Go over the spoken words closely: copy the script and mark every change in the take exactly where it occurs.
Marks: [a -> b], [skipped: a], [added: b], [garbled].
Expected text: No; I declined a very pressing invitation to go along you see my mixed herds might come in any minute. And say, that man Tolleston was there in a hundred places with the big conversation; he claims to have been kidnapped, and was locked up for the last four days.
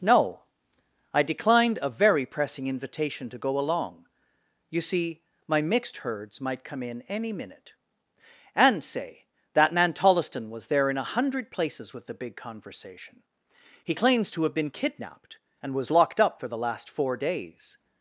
No; I declined a very pressing invitation to go along you see my mixed herds might come in any minute. And say, that man Tolleston was there in a hundred places with the big conversation; he claims to have been kidnapped, and was locked up for the last four days.